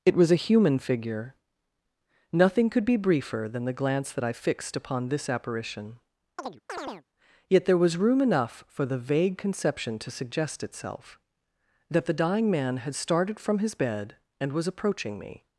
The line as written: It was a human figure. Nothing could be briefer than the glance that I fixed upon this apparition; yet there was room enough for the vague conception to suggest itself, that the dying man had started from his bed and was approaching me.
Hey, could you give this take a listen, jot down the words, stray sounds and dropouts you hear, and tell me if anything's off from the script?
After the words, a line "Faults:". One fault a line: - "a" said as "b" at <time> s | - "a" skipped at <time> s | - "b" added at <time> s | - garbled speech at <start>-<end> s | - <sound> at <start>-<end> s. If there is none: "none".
It was a human figure. Nothing could be briefer than the glance that I fixed upon this apparition; yet there was room enough for the vague conception to suggest itself, that the dying man had started from his bed and was approaching me.
Faults:
- chirp at 6.4-7.0 s